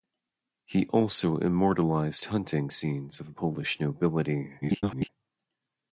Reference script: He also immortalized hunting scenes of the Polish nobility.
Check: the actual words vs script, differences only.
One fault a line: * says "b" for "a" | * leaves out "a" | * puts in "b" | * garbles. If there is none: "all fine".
* leaves out "the"
* garbles